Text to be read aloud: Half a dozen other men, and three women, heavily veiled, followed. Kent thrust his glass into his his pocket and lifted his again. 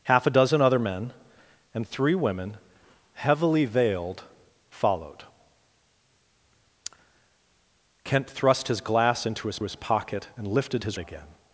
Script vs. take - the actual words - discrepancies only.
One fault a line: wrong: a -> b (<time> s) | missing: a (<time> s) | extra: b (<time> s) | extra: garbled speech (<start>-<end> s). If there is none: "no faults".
no faults